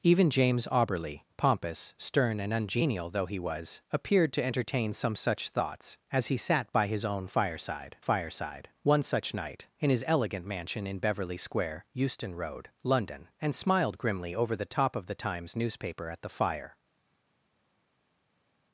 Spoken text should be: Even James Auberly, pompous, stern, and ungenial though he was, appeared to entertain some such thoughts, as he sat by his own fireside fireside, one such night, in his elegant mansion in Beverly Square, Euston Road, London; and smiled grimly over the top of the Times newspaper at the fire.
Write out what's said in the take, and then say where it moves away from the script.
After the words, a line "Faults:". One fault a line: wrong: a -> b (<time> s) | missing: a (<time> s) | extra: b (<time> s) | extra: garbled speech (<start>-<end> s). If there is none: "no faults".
Even James Auberly, pompous, stern, and ungenial though he was, appeared to entertain some such thoughts, as he sat by his own fireside fireside, one such night, in his elegant mansion in Beverly Square, Euston Road, London; and smiled grimly over the top of the Times newspaper at the fire.
Faults:
no faults